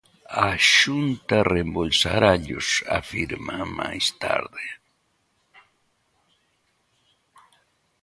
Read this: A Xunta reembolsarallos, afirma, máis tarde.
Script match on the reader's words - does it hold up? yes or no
yes